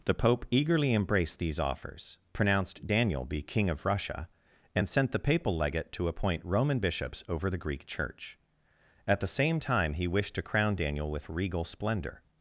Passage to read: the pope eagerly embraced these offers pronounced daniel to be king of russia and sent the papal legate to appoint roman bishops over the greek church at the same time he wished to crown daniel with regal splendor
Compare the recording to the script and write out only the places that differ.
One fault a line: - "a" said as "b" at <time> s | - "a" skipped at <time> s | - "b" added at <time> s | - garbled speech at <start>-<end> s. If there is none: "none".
- "to" skipped at 3.2 s